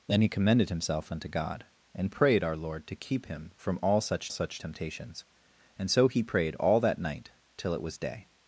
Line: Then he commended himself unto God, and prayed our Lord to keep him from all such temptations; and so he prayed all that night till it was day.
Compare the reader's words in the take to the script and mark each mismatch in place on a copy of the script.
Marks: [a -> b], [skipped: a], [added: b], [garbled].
Then he commended himself unto God, and prayed our Lord to keep him from all such [added: such] temptations; and so he prayed all that night till it was day.